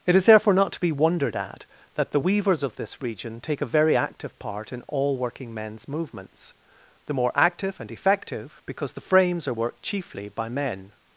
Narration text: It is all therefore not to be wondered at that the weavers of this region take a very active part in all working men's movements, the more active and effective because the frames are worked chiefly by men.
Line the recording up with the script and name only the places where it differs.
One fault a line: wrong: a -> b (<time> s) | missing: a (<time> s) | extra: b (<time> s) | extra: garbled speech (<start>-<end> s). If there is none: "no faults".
missing: all (0.2 s)